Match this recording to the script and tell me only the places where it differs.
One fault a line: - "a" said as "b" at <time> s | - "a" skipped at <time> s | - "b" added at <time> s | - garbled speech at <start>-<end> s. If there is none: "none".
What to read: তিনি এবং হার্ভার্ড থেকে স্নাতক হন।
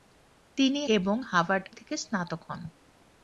none